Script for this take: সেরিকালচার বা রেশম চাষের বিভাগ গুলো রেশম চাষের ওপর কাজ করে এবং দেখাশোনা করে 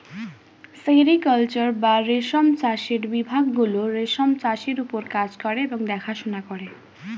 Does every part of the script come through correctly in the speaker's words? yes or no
yes